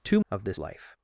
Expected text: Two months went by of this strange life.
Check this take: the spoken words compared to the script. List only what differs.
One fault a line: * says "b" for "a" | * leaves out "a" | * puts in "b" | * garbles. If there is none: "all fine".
* leaves out "months went by"
* leaves out "strange"